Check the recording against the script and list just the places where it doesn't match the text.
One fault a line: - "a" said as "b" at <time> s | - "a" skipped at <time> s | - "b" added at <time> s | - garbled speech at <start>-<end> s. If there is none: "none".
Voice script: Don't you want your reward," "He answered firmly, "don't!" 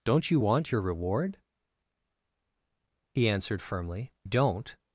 none